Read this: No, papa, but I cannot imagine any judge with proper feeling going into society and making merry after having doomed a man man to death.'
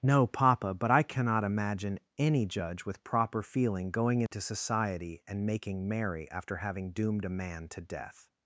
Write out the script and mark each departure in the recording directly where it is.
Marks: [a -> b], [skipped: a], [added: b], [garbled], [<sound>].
No, papa, but I cannot imagine any judge with proper feeling going into [dropout] society and making merry after having doomed a man [skipped: man] to death.'